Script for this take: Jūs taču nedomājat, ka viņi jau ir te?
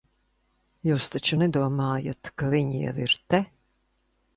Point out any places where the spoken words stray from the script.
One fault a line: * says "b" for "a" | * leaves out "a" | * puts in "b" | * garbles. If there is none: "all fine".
all fine